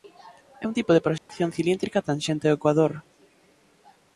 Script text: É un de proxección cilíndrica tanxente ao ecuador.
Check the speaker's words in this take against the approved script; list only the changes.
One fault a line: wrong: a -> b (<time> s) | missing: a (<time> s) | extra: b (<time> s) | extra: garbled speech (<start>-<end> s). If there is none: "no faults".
extra: tipo (0.8 s)